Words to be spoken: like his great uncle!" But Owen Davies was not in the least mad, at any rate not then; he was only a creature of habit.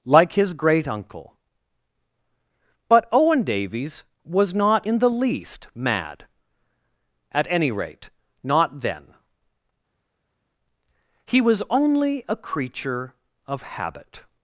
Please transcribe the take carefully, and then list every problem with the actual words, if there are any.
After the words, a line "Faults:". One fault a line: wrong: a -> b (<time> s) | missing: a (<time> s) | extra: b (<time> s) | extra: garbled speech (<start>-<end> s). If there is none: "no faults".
like his great uncle!" But Owen Davies was not in the least mad, at any rate not then; he was only a creature of habit.
Faults:
no faults